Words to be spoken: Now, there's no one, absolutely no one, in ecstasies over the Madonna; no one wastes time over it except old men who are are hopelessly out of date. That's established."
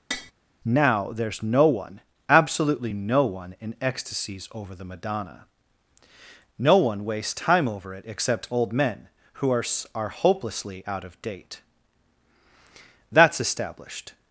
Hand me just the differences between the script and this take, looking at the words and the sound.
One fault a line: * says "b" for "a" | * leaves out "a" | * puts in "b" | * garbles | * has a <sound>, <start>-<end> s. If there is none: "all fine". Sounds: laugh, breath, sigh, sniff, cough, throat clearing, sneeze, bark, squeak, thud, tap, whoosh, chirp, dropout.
* has a tap, 0.1-0.3 s